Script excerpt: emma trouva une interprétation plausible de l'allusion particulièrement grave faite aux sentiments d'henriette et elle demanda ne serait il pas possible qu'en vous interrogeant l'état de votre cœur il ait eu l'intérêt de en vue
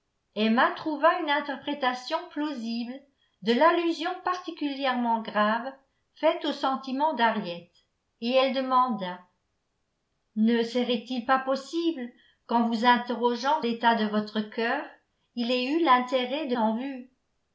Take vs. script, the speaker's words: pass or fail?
pass